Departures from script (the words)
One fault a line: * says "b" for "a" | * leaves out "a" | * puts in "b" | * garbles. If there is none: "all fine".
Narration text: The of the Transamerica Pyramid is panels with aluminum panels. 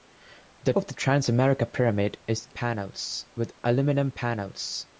all fine